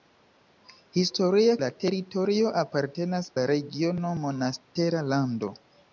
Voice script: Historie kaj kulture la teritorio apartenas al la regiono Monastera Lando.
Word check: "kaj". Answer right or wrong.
wrong